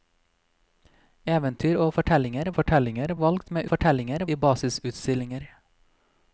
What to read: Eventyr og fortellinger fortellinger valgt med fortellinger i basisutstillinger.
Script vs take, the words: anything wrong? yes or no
no